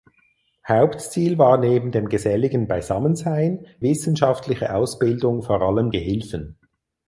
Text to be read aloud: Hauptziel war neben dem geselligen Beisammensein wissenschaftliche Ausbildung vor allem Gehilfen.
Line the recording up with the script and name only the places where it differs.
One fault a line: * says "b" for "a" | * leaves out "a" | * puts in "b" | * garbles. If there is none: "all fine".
all fine